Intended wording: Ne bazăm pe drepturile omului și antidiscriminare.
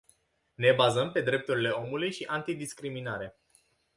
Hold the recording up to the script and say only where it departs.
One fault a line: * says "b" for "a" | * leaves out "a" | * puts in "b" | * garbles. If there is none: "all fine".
all fine